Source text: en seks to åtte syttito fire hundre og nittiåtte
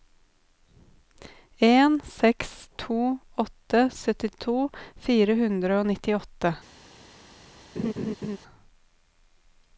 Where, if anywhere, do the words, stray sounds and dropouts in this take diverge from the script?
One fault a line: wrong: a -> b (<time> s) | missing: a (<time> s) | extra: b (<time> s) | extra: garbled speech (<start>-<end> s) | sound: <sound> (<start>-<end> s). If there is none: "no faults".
sound: laugh (7.8-8.4 s)